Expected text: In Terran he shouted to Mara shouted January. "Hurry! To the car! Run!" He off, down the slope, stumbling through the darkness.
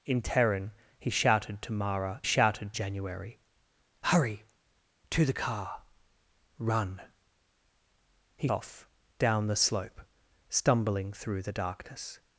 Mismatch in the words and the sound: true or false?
false